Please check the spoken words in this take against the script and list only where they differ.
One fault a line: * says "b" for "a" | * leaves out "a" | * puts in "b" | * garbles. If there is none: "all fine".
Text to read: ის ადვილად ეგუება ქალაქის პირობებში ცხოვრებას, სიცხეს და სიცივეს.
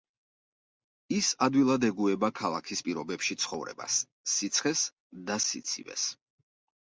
all fine